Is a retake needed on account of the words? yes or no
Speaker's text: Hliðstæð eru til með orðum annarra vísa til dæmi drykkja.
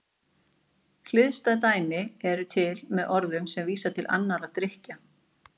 yes